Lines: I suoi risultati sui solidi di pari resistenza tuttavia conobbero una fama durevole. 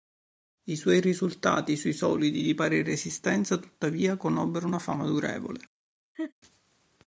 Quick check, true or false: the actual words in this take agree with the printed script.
true